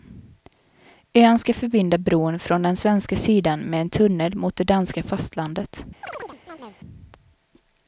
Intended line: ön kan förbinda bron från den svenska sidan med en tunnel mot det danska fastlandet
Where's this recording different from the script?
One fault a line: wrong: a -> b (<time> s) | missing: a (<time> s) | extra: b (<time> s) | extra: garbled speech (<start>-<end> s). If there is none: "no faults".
wrong: kan -> ska (1.4 s)